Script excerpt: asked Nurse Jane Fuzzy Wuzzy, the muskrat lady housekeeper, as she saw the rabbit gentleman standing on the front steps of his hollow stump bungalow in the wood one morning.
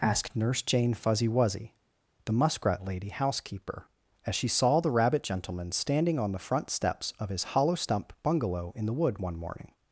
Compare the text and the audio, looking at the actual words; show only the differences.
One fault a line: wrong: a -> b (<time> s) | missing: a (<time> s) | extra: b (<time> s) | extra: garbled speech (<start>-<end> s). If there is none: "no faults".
no faults